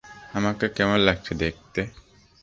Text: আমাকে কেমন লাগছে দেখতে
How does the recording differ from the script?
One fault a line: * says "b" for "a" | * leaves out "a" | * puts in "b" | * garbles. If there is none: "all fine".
all fine